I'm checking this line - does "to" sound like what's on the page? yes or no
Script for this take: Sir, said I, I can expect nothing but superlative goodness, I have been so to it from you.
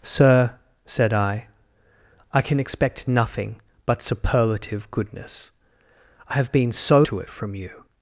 yes